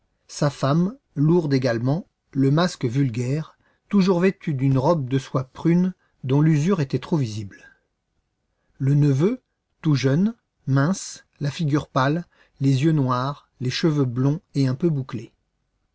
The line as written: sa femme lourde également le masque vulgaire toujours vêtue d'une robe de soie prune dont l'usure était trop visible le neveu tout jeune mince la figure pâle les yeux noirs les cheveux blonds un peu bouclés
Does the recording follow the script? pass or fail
fail